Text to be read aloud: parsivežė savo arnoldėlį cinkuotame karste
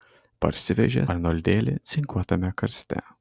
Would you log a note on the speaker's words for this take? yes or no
yes